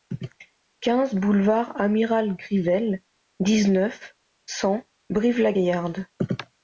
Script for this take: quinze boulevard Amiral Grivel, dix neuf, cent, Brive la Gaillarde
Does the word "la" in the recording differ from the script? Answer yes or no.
no